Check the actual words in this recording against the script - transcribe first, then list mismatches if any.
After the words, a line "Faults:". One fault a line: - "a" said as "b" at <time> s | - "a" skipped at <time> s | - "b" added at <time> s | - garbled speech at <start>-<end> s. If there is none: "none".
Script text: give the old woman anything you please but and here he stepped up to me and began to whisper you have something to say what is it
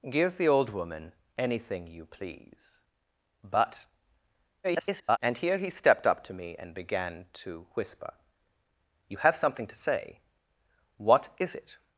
give the old woman anything you please but [garbled] and here he stepped up to me and began to whisper you have something to say what is it
Faults:
- garbled speech at 4.6-5.2 s